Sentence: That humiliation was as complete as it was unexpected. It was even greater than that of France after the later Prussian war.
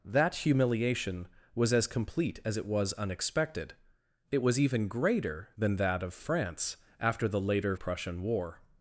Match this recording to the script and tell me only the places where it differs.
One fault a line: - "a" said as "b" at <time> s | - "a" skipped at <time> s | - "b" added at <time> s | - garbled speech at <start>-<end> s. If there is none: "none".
none